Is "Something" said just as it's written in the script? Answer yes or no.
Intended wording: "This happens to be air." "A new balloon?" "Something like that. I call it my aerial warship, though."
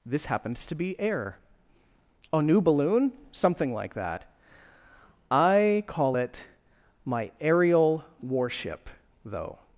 yes